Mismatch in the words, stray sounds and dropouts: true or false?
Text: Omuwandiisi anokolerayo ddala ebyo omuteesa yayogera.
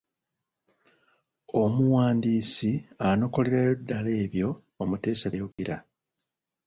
true